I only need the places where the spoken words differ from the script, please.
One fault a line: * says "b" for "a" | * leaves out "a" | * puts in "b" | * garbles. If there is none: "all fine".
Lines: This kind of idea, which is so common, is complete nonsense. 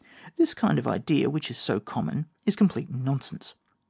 all fine